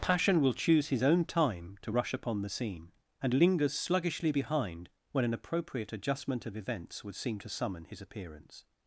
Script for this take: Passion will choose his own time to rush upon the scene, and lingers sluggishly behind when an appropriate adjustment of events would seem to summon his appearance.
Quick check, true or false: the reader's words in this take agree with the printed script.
true